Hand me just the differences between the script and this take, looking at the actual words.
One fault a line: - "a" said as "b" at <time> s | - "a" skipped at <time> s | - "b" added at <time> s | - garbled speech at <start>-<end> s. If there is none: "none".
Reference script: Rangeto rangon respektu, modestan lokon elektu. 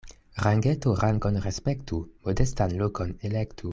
none